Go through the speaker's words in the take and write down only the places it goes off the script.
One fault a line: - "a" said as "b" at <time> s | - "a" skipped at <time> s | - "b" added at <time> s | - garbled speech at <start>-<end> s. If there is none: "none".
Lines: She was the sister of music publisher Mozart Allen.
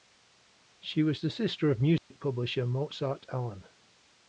none